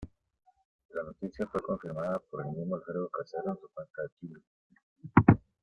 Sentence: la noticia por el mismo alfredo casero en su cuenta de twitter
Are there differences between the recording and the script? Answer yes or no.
yes